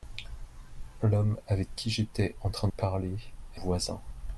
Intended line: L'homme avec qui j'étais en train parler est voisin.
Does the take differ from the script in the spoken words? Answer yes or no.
no